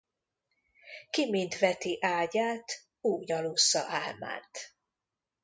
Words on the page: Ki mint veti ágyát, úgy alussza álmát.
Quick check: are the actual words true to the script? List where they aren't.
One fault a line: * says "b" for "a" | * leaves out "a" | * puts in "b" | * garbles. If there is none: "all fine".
all fine